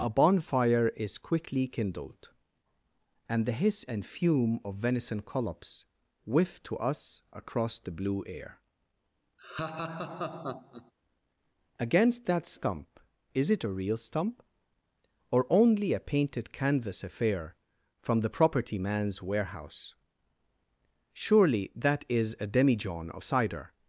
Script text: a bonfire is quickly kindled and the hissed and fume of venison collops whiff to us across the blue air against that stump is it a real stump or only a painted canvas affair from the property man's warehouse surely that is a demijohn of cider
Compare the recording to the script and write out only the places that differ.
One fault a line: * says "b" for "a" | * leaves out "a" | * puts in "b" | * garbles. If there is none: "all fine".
* says "hiss" for "hissed"